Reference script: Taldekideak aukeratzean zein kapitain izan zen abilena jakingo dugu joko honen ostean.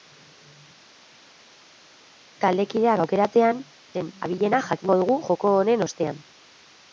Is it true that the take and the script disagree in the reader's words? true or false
true